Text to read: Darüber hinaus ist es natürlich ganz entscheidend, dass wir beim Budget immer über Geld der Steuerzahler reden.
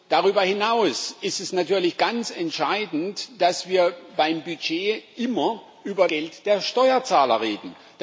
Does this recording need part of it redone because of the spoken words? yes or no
no